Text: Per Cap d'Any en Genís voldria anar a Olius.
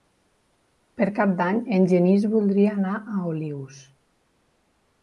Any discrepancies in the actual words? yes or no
no